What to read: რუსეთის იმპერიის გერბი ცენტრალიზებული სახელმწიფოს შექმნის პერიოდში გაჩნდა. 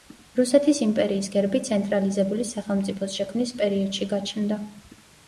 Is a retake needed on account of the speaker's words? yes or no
no